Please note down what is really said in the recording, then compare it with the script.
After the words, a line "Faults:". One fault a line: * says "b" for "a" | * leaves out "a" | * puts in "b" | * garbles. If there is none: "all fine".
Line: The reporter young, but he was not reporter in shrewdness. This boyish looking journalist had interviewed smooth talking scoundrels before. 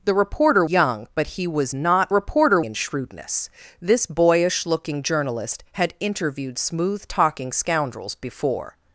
The reporter young, but he was not reporter in shrewdness. This boyish looking journalist had interviewed smooth talking scoundrels before.
Faults:
all fine